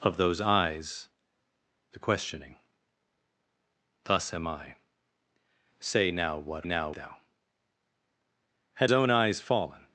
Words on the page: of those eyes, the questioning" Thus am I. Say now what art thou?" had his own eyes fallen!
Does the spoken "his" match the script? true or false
false